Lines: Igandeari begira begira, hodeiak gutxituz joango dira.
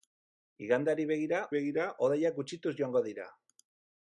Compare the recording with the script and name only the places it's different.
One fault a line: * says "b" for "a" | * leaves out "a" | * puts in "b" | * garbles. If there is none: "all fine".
all fine